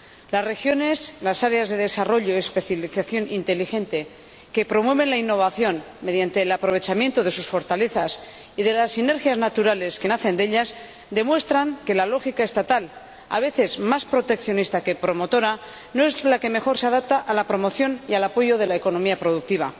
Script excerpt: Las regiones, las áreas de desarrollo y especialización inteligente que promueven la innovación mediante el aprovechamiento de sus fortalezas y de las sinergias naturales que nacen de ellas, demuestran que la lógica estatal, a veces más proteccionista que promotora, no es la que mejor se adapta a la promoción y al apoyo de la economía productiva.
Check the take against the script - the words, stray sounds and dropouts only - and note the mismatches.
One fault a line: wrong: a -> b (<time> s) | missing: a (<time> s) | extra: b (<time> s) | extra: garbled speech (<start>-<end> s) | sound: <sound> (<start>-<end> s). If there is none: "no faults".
no faults